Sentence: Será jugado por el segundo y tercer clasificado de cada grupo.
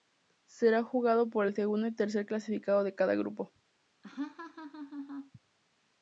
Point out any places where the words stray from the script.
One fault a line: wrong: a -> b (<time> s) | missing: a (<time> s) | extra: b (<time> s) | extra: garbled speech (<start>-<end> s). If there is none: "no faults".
no faults